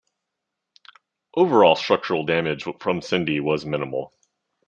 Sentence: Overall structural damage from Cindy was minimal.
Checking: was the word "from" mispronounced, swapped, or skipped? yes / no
no